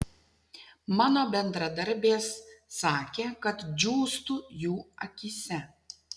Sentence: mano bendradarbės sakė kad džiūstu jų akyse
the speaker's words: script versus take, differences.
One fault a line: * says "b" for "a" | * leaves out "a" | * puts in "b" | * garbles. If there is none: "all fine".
all fine